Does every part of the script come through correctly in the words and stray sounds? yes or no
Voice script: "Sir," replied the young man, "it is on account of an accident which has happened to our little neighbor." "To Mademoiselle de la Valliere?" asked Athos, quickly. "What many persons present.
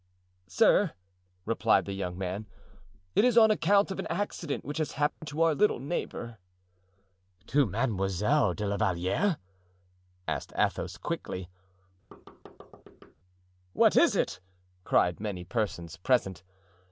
no